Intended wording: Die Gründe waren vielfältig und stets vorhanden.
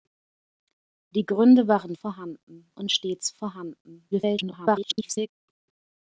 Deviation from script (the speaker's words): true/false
true